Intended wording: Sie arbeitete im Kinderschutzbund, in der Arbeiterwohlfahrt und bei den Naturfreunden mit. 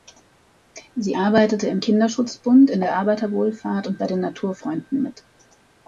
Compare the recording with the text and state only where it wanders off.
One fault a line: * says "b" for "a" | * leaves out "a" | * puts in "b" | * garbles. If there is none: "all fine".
all fine